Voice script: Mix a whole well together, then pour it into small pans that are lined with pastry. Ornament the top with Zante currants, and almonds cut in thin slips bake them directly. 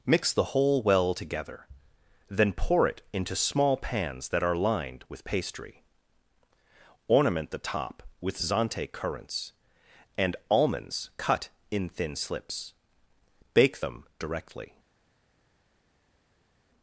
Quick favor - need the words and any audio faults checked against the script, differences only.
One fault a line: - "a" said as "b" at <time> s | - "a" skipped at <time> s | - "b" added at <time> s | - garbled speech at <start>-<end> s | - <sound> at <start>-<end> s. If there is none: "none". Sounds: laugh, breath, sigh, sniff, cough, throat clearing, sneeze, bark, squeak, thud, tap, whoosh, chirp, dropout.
- "a" said as "the" at 0.3 s